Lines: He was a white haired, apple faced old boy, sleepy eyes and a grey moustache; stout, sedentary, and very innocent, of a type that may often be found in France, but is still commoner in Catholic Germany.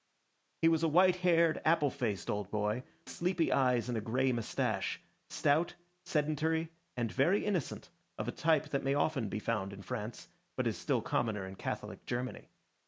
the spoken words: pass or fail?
pass